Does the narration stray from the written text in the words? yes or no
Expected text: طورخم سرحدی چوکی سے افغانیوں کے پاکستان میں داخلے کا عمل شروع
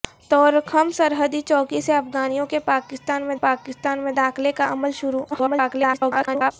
yes